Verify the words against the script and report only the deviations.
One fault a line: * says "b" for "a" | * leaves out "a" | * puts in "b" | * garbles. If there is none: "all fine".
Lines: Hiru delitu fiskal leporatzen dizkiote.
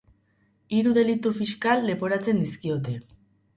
all fine